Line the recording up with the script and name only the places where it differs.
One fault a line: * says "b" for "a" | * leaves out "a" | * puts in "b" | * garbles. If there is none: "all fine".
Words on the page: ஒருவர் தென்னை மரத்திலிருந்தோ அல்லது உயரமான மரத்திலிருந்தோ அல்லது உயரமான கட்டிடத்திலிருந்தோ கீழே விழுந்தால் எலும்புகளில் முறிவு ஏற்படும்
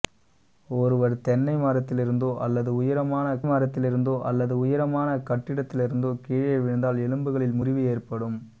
all fine